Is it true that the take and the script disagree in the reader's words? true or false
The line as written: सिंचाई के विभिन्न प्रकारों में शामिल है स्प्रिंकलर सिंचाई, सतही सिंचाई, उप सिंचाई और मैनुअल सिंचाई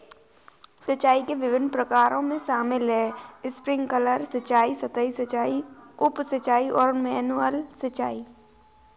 false